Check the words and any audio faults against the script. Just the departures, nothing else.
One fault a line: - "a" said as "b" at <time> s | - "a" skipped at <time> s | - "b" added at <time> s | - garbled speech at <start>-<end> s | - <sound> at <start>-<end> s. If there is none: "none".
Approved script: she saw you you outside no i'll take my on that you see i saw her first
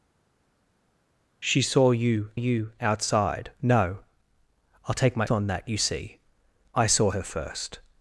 none